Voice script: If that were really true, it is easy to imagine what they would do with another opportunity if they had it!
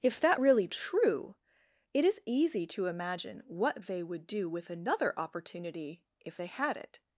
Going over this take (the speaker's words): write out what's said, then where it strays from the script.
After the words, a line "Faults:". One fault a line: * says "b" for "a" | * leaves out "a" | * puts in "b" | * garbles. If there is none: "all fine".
If that really true, it is easy to imagine what they would do with another opportunity if they had it!
Faults:
* leaves out "were"